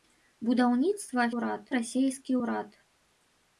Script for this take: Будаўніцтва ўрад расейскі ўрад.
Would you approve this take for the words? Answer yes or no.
yes